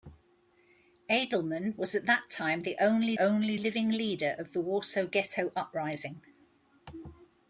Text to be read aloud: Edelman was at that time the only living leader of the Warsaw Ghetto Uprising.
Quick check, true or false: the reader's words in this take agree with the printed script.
false